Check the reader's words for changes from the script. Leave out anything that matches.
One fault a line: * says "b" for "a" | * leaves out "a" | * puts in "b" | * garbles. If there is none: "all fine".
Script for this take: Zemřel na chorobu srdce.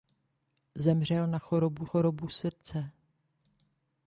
* puts in "chorobu"